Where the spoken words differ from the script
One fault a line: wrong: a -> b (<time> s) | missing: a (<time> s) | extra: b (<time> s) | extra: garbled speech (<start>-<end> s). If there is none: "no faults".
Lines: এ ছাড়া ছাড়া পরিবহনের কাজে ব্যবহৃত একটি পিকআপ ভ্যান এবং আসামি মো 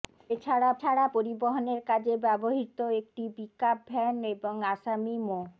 no faults